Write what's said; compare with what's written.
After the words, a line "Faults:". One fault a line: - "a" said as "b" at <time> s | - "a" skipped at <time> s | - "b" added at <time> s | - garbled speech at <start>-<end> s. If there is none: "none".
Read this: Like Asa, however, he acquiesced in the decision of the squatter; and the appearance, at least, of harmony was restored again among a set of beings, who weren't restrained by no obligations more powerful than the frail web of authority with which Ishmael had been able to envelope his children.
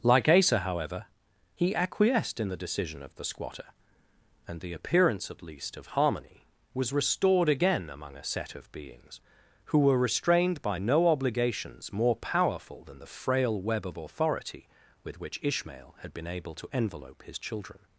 Like Asa, however, he acquiesced in the decision of the squatter; and the appearance, at least, of harmony was restored again among a set of beings, who were restrained by no obligations more powerful than the frail web of authority with which Ishmael had been able to envelope his children.
Faults:
- "weren't" said as "were" at 9.8 s